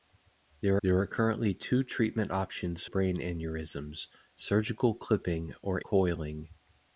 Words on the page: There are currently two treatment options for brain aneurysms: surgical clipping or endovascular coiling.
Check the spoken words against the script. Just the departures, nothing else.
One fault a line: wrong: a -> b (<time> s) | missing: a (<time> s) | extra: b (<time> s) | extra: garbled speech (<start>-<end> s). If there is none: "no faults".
extra: there (0.8 s)
missing: for (2.9 s)
missing: endovascular (5.8 s)